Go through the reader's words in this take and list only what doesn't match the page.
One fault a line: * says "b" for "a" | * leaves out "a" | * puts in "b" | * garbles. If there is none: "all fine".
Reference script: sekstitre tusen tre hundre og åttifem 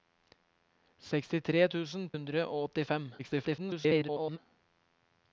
* leaves out "tre"
* garbles